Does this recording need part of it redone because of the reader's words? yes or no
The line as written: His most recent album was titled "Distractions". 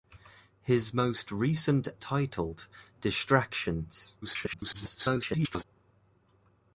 yes